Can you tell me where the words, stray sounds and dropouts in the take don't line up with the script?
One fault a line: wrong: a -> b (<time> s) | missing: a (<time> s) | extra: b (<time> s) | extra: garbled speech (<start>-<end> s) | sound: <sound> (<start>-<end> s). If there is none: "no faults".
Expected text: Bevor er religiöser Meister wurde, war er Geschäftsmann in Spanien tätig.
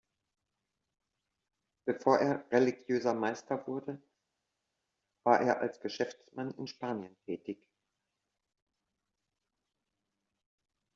extra: als (5.6 s)